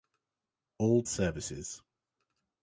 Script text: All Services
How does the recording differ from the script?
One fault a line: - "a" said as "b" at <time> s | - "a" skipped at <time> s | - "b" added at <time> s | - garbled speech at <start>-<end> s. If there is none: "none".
none